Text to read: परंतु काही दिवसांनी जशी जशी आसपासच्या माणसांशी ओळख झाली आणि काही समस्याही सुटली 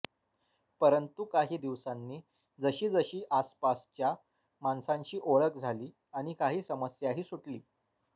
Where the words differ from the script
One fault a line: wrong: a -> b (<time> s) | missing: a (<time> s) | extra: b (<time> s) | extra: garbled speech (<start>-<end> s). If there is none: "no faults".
no faults